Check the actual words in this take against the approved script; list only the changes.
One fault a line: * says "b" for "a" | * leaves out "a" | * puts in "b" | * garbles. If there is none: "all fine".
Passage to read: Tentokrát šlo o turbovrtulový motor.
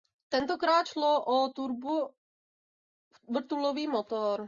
all fine